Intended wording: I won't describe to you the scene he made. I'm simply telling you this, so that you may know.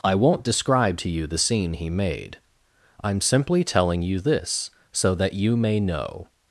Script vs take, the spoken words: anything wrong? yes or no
no